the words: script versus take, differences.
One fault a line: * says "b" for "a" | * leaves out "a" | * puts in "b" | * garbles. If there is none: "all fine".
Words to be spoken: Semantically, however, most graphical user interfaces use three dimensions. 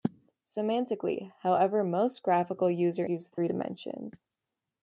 * leaves out "interfaces"